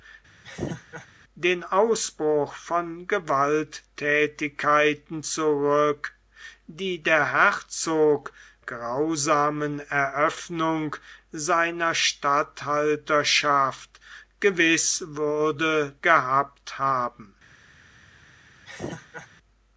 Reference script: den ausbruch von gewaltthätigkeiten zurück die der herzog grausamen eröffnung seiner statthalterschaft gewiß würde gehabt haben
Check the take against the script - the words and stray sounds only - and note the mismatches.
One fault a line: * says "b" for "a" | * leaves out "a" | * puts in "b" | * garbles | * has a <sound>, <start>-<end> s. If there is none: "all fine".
* has a laugh, 0.4-1.1 s
* has a laugh, 18.7-19.3 s